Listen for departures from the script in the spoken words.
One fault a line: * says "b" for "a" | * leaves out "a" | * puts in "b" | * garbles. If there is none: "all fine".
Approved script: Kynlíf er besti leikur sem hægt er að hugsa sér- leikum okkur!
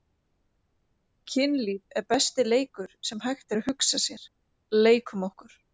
all fine